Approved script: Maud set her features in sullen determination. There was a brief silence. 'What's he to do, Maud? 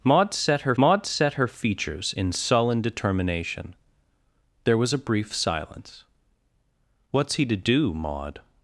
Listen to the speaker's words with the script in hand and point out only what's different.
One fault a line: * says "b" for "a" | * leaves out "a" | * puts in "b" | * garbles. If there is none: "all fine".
* puts in "maud set her"